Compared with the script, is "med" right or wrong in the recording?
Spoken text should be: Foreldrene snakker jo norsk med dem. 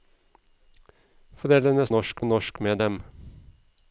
right